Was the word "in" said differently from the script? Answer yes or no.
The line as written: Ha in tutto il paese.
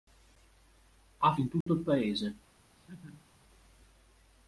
no